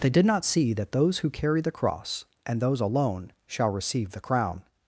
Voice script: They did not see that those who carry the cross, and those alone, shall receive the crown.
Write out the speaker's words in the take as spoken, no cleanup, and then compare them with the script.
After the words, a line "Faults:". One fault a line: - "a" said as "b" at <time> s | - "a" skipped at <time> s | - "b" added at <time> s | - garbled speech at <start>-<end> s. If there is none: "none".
They did not see that those who carry the cross, and those alone, shall receive the crown.
Faults:
none